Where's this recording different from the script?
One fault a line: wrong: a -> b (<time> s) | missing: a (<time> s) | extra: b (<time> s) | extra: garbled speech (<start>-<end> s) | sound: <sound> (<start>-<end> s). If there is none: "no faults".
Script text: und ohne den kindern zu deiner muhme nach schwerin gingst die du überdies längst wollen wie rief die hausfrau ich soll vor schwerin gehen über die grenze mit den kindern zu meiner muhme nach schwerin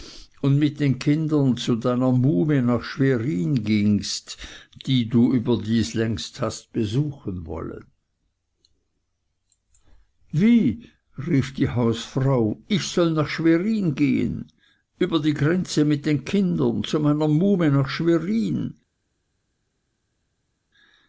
wrong: ohne -> mit (0.6 s)
extra: hast besuchen (6.4 s)
wrong: vor -> nach (13.1 s)